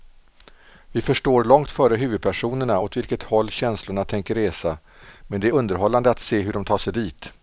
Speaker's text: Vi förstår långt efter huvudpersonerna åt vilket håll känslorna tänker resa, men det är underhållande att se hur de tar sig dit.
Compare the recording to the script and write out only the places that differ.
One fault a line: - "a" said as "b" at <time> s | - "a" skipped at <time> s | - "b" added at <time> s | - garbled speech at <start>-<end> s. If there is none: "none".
- "efter" said as "före" at 1.7 s